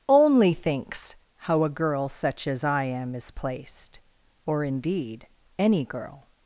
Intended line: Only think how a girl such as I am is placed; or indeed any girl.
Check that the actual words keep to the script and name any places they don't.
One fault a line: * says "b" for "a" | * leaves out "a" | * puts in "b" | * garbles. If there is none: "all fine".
* says "thinks" for "think"